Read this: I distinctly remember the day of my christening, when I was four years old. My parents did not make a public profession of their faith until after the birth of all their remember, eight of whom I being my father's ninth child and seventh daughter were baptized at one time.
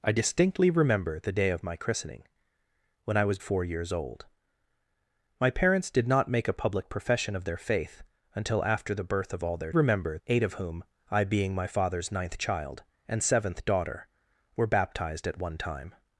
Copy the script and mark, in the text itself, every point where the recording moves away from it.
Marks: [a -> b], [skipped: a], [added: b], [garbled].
I distinctly remember the day of my christening, when I was four years old. My parents did not make a public profession of their faith until after the birth of all their remember, eight of whom I being my father's ninth child and seventh daughter were baptized at one time.